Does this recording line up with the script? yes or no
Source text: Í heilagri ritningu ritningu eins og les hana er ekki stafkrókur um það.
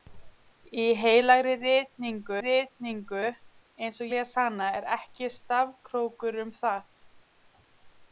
yes